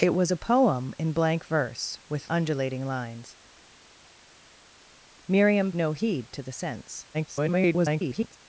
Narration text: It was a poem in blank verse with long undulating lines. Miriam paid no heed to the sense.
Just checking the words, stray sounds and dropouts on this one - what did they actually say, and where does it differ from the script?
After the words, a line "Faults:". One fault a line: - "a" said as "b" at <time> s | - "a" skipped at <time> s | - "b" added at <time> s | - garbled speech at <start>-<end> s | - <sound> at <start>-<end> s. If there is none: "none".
It was a poem in blank verse with undulating lines. Miriam no heed to the sense. [garbled]
Faults:
- "long" skipped at 2.3 s
- "paid" skipped at 5.7 s
- garbled speech at 7.1-8.4 s